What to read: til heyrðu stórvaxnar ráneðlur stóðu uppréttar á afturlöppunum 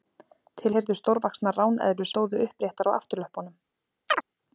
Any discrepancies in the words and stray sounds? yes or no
yes